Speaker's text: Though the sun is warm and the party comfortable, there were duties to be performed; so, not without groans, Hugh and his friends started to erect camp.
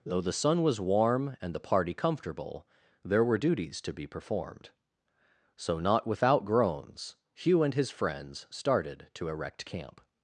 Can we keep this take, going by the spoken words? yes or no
no